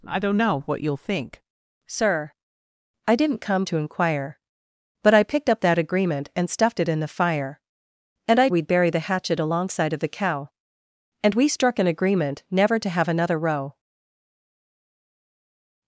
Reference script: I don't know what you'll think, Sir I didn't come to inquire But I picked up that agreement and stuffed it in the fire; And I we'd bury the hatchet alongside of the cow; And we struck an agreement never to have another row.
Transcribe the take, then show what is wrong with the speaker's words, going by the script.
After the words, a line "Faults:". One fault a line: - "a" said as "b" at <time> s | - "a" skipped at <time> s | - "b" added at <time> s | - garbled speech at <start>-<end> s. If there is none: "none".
I don't know what you'll think, Sir I didn't come to inquire But I picked up that agreement and stuffed it in the fire; And I we'd bury the hatchet alongside of the cow; And we struck an agreement never to have another row.
Faults:
none